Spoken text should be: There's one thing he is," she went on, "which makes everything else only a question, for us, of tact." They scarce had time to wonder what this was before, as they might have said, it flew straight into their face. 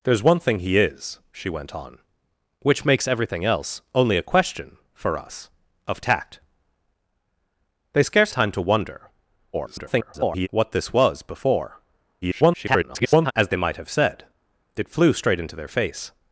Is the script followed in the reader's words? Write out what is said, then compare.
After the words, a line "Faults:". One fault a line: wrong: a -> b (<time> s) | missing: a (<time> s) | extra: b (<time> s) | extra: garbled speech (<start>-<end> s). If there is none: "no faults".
There's one thing he is," she went on, "which makes everything else only a question, for us, of tact." They scarce time to wonder [garbled] what this was before, [garbled] as they might have said, it flew straight into their face.
Faults:
missing: had (8.3 s)
extra: garbled speech (9.5-10.5 s)
extra: garbled speech (12.2-13.3 s)